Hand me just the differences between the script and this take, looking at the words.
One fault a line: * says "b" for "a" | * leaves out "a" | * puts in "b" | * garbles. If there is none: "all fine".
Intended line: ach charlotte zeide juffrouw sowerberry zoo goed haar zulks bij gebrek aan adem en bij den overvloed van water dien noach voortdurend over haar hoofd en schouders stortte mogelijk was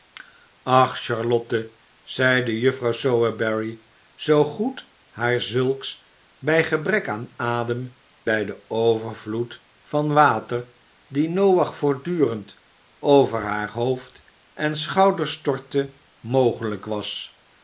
* leaves out "en"